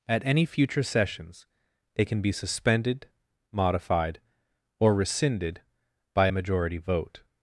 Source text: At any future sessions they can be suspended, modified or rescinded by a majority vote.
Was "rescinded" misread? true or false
false